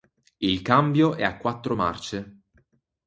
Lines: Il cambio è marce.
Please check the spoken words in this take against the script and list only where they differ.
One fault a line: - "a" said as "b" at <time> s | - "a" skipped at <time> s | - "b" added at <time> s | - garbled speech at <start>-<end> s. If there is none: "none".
- "a quattro" added at 1.2 s